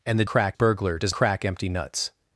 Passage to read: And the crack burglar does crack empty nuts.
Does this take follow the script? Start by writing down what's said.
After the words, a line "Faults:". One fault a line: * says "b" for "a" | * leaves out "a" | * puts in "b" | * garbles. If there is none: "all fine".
And the crack burglar does crack empty nuts.
Faults:
all fine